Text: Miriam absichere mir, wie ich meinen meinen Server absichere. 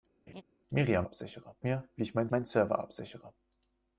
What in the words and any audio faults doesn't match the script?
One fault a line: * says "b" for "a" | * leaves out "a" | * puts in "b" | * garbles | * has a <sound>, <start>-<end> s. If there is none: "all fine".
* has a laugh, 0.3-0.4 s